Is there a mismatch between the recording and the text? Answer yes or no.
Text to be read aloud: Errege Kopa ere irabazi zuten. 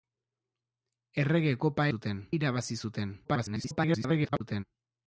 yes